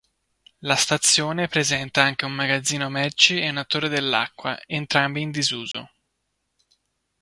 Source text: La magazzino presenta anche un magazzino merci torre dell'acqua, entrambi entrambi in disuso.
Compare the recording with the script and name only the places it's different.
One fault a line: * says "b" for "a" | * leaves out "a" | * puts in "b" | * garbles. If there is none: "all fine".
* says "stazione" for "magazzino"
* puts in "e una"
* leaves out "entrambi"